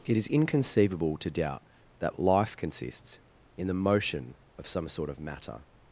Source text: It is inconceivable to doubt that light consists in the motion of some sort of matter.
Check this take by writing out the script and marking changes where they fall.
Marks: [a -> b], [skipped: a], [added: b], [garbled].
It is inconceivable to doubt that [light -> life] consists in the motion of some sort of matter.